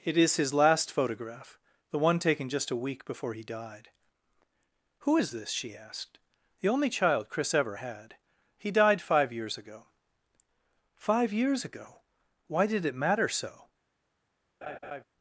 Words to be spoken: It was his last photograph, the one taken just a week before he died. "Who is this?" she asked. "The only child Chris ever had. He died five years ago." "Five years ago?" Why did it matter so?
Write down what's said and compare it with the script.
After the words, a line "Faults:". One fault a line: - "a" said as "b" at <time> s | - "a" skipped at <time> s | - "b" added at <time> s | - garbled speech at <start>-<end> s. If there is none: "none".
It is his last photograph, the one taken just a week before he died. "Who is this?" she asked. "The only child Chris ever had. He died five years ago." "Five years ago?" Why did it matter so?
Faults:
- "was" said as "is" at 0.2 s